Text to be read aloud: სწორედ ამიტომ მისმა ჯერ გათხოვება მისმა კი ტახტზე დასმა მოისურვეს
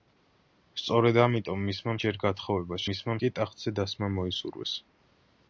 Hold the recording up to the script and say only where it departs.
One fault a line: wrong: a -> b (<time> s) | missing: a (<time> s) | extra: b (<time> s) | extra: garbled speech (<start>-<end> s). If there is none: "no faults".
no faults